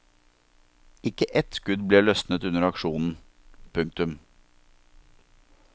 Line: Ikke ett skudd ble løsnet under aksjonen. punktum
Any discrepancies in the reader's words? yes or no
no